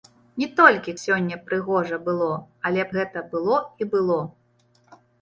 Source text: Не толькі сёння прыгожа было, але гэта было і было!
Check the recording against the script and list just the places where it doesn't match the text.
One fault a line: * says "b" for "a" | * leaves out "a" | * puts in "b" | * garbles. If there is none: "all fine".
all fine